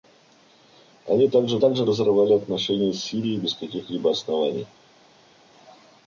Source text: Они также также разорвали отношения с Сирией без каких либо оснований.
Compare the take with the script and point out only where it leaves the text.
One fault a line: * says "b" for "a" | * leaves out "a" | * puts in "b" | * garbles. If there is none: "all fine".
all fine